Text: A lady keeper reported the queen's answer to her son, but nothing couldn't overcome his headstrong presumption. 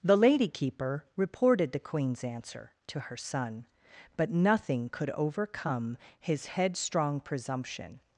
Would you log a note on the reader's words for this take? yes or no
yes